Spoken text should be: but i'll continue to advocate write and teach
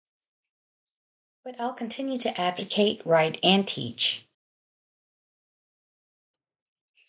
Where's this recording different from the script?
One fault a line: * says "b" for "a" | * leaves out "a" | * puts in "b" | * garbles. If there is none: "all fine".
all fine